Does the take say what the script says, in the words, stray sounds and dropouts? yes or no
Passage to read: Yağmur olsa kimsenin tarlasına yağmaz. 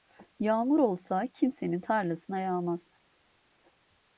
yes